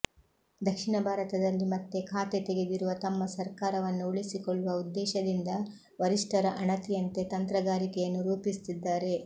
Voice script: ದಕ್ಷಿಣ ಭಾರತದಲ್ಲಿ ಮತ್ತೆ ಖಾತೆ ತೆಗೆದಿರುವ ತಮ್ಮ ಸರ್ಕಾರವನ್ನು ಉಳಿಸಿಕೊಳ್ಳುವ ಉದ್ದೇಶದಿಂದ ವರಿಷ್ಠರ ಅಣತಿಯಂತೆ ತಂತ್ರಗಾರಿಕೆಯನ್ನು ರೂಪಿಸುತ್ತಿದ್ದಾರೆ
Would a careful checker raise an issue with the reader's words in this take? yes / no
no